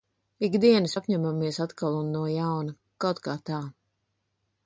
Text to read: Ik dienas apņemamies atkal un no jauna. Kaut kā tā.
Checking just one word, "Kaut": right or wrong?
right